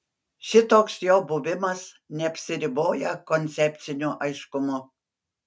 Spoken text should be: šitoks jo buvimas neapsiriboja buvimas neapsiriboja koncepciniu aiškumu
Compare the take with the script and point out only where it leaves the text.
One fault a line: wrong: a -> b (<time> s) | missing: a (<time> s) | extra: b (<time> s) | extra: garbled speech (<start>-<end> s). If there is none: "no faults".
missing: buvimas neapsiriboja (3.1 s)